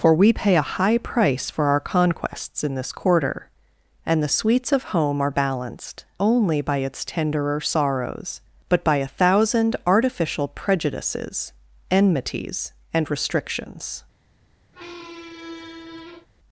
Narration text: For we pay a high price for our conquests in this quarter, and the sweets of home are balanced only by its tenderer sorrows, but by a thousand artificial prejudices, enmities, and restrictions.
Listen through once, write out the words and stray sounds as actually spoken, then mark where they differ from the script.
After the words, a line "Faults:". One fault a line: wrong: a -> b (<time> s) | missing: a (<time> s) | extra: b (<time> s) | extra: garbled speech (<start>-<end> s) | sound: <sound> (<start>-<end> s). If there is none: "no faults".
For we pay a high price for our conquests in this quarter, and the sweets of home are balanced only by its tenderer sorrows, but by a thousand artificial prejudices, enmities, and restrictions.
Faults:
sound: squeak (14.7-16.3 s)